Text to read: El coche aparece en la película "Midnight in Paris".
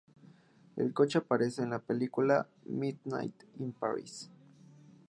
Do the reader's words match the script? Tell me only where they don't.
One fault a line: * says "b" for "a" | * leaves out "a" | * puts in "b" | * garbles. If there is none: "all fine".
all fine